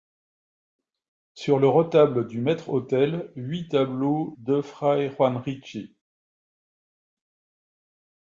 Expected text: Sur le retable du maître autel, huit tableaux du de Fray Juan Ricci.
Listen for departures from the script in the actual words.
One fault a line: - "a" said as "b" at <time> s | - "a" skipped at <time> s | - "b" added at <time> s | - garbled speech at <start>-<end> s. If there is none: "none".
- "du" skipped at 4.3 s